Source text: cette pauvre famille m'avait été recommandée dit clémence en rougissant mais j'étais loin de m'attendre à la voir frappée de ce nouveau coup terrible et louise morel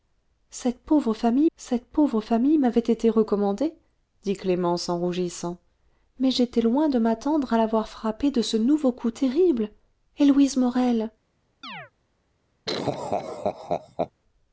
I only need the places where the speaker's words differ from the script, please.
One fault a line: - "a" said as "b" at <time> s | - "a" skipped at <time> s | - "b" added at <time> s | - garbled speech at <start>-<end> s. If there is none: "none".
- "cette pauvre famille" added at 1.6 s